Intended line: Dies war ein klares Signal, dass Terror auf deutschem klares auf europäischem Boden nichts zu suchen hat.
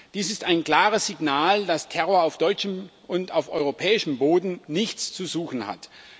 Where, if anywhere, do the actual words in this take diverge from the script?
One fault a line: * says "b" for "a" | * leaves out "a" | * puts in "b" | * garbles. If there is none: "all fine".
* says "ist" for "war"
* says "und" for "klares"